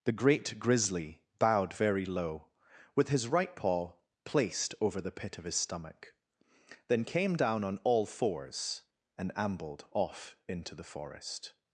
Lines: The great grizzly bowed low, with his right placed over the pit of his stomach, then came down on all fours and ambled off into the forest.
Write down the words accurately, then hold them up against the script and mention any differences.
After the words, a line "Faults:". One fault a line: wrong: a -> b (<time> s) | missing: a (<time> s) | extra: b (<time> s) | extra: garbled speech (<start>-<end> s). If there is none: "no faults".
The great grizzly bowed very low, with his right paw placed over the pit of his stomach, then came down on all fours and ambled off into the forest.
Faults:
extra: very (1.7 s)
extra: paw (3.6 s)